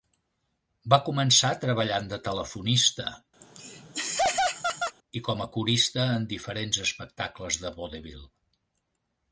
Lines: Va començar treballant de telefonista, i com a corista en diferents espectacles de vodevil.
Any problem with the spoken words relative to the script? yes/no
no